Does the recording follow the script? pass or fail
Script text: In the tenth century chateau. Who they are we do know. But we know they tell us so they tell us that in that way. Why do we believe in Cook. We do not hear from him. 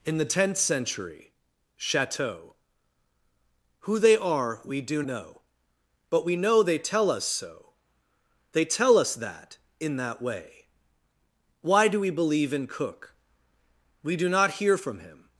pass